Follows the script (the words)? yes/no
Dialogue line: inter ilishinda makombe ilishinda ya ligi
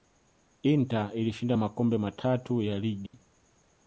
no